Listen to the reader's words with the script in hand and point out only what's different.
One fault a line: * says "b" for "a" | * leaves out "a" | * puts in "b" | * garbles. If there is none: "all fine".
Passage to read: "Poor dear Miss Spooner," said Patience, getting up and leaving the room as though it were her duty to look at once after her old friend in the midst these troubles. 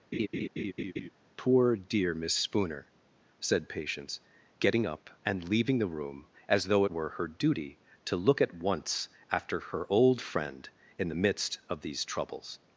* puts in "of"